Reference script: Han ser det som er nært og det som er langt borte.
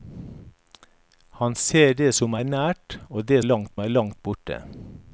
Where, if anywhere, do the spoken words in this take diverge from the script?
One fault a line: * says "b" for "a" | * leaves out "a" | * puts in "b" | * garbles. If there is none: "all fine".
* says "langt" for "som"